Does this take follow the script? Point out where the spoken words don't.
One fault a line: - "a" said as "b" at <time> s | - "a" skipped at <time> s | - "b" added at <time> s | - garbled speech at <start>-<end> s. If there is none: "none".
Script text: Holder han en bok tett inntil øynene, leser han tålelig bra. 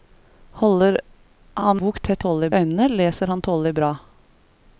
- "en" skipped at 1.8 s
- "inntil" said as "tålelig" at 2.2 s